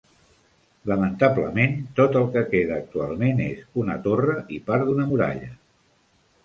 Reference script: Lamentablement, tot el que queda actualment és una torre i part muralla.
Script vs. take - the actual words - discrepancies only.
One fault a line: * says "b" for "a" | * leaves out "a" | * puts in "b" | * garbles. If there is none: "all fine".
* puts in "d'una"